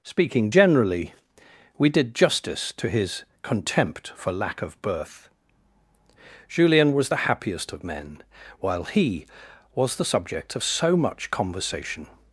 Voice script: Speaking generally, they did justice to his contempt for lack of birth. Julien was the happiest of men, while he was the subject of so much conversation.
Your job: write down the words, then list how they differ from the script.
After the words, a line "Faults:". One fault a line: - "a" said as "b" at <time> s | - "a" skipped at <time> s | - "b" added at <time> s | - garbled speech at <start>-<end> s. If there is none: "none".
Speaking generally, we did justice to his contempt for lack of birth. Julien was the happiest of men, while he was the subject of so much conversation.
Faults:
- "they" said as "we" at 1.8 s